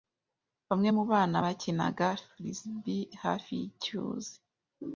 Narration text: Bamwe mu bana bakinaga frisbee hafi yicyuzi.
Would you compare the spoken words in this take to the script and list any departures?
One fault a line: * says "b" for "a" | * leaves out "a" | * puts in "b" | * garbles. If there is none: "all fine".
all fine